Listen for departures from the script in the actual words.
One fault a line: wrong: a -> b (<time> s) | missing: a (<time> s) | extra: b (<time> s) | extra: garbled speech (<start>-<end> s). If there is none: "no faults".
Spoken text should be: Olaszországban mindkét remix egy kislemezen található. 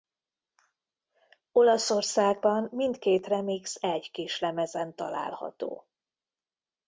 no faults